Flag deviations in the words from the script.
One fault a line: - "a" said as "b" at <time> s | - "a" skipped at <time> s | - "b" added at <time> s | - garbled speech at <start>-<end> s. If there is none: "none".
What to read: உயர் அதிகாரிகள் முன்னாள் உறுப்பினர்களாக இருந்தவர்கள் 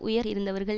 - "அதிகாரிகள் முன்னாள் உறுப்பினர்களாக" skipped at 0.3 s